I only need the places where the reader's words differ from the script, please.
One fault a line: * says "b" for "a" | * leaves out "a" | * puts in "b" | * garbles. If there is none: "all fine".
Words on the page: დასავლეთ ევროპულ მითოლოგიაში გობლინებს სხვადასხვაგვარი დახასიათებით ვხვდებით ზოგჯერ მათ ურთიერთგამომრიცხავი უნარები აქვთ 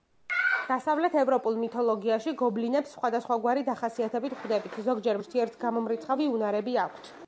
* leaves out "მათ"